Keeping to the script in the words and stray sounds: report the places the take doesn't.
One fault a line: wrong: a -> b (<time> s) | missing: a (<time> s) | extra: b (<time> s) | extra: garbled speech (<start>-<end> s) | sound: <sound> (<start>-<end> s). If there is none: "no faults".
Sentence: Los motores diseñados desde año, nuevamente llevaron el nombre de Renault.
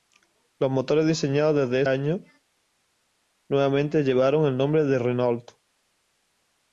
no faults